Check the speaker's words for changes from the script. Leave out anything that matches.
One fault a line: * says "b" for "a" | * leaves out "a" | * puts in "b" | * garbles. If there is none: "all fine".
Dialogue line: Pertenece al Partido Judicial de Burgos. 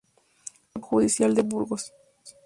* leaves out "Partido"